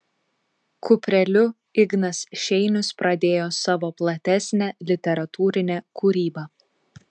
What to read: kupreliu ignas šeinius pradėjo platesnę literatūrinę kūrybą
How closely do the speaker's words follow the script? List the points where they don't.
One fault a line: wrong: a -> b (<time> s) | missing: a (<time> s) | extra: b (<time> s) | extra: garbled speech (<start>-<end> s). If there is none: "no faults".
extra: savo (3.6 s)